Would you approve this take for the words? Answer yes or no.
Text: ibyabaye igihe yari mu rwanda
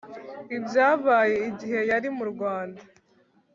yes